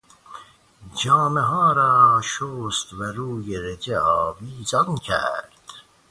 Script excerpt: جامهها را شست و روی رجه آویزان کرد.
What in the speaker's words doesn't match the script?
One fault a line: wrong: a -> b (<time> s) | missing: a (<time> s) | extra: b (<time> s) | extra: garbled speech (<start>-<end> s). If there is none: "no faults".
no faults